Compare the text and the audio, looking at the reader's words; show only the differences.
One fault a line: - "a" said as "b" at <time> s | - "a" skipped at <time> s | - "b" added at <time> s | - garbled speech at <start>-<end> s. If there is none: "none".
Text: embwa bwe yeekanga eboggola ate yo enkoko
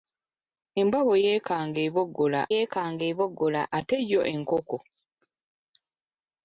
- "yeekanga eboggola" added at 2.5 s